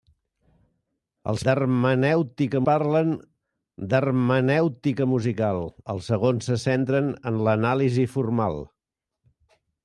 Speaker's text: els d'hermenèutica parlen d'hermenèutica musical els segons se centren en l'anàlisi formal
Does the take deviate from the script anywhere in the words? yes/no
no